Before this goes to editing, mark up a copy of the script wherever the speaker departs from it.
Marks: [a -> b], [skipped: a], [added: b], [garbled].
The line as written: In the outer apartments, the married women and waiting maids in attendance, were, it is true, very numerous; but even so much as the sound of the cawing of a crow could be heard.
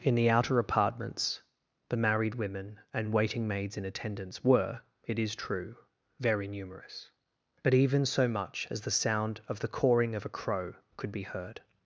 In the outer apartments, the married women and waiting maids in attendance, were, it is true, very numerous; but even so much as the sound of the cawing of a crow could be heard.